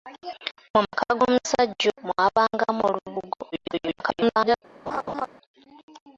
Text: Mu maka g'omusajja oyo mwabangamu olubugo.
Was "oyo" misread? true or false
true